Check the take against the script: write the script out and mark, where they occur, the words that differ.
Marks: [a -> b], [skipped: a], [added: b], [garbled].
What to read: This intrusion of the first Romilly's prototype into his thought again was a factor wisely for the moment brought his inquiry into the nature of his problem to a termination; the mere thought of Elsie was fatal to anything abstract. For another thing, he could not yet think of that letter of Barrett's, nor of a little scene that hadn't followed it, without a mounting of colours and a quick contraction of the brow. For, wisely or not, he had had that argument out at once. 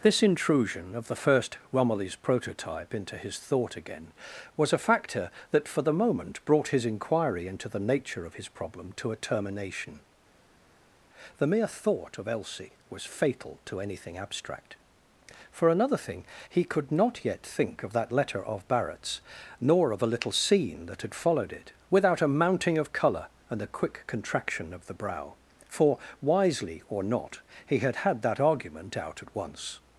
This intrusion of the first Romilly's prototype into his thought again was a factor [wisely -> that] for the moment brought his inquiry into the nature of his problem to a termination; the mere thought of Elsie was fatal to anything abstract. For another thing, he could not yet think of that letter of Barrett's, nor of a little scene that [hadn't -> had] followed it, without a mounting of [colours -> colour] and a quick contraction of the brow. For, wisely or not, he had had that argument out at once.